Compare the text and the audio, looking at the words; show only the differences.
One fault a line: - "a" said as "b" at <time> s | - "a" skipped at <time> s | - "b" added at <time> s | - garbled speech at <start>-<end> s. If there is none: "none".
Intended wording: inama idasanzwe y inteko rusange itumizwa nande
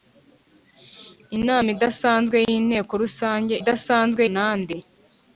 - "itumizwa" said as "idasanzwe" at 3.6 s